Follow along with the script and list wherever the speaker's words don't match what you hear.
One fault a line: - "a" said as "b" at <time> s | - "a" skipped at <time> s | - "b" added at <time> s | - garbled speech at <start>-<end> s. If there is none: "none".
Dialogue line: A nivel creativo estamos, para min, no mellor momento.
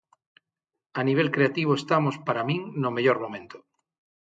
none